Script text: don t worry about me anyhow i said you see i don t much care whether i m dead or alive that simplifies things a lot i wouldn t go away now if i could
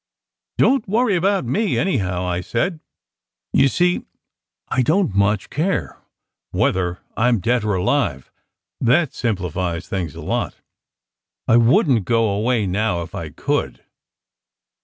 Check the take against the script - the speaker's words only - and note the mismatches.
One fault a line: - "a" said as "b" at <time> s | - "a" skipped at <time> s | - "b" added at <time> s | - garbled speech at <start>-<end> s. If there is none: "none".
none